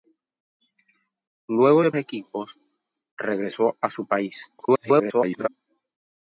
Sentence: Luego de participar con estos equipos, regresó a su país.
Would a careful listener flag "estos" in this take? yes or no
yes